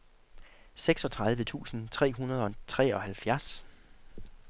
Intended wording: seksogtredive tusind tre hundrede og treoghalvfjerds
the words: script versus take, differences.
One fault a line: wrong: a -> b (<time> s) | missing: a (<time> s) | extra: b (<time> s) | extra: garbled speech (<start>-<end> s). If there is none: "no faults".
no faults